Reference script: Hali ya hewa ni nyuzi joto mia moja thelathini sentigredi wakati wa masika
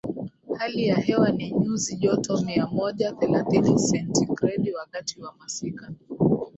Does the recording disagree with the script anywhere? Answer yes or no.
no